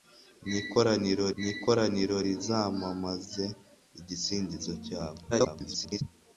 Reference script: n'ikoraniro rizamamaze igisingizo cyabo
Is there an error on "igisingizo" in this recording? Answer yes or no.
no